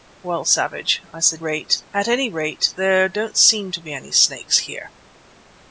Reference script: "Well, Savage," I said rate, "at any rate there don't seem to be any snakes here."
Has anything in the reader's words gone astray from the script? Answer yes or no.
no